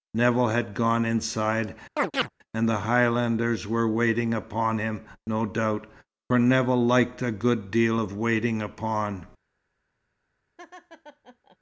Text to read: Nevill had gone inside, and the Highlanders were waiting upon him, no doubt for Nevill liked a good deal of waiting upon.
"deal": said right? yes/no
yes